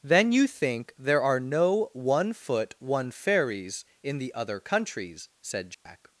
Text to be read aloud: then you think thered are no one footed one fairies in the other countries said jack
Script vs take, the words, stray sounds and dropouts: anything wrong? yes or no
yes